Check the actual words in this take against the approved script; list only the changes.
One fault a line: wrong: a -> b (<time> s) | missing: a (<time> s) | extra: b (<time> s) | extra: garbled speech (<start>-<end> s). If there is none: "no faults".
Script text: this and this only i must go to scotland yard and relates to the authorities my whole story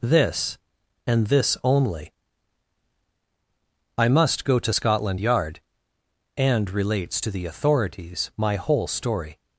no faults